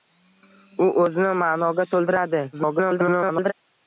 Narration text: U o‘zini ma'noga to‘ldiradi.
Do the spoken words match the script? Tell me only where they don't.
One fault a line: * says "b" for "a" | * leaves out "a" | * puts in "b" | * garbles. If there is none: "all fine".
* garbles